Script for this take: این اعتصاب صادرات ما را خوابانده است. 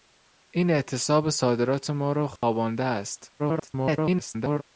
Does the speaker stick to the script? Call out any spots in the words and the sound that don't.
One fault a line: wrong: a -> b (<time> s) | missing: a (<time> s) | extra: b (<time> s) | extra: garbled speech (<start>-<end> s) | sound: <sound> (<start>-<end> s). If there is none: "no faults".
sound: dropout (2.4-2.4 s)
extra: garbled speech (3.4-4.6 s)